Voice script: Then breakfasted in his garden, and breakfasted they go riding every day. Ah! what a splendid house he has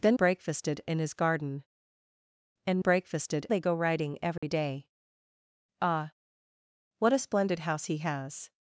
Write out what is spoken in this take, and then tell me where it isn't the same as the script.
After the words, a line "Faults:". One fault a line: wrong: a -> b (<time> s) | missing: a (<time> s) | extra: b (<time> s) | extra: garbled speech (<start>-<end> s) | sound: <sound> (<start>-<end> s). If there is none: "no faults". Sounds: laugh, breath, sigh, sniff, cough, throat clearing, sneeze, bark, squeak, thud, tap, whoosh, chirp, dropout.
Then breakfasted in his garden, and breakfasted they go riding every day. Ah! what a splendid house he has
Faults:
sound: dropout (4.4-4.4 s)